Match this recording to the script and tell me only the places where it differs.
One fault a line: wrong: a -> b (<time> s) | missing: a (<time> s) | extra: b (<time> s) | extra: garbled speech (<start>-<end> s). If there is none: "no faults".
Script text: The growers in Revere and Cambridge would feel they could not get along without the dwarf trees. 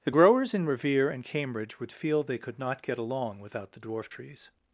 no faults